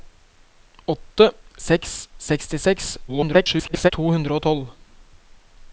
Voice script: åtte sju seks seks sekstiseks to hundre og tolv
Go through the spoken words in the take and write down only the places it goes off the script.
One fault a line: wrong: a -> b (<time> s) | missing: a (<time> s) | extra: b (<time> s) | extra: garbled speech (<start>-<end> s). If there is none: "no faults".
missing: sju seks (1.3 s)
extra: garbled speech (3.1-3.9 s)